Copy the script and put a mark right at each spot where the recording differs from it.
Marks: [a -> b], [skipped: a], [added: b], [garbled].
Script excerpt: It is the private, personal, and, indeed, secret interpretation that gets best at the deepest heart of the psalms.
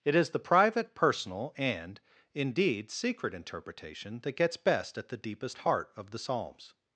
It is the private, personal, and, indeed, secret interpretation that gets best at the deepest heart of the psalms.